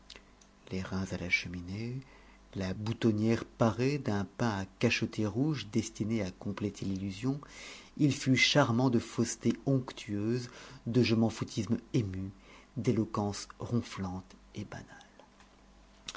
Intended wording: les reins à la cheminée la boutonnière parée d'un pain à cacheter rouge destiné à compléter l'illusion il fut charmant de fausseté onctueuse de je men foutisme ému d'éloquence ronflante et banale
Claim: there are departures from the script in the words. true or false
false